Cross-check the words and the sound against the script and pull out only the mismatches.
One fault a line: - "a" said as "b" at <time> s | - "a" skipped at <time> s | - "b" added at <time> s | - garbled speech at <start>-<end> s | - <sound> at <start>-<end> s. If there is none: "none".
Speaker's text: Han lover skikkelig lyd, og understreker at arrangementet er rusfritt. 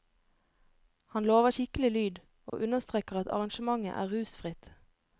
- dropout at 2.5-2.5 s